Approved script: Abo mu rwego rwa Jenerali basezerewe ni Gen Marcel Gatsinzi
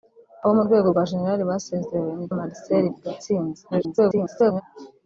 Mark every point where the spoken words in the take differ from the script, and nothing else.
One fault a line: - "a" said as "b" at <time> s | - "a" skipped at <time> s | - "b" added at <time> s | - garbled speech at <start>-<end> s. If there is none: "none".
- "Gen" skipped at 2.3 s
- garbled speech at 3.7-4.6 s